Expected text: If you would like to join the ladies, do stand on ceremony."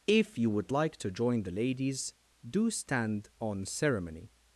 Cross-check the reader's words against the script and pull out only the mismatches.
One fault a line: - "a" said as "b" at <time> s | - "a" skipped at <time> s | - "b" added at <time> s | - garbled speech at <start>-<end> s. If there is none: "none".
none